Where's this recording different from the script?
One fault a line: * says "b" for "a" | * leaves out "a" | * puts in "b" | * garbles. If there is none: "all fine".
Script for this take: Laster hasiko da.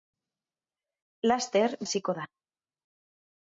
all fine